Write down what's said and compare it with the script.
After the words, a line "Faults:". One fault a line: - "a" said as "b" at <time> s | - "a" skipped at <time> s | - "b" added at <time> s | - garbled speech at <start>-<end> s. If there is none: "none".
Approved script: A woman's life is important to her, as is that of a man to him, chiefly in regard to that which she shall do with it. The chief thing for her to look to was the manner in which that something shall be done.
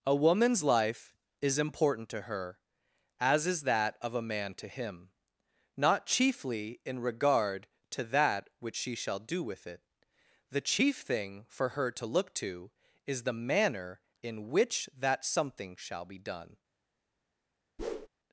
A woman's life is important to her, as is that of a man to him, not chiefly in regard to that which she shall do with it. The chief thing for her to look to is the manner in which that something shall be done.
Faults:
- "not" added at 5.7 s
- "was" said as "is" at 13.1 s